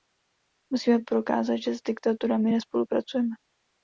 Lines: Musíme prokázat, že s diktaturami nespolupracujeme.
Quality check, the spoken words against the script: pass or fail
pass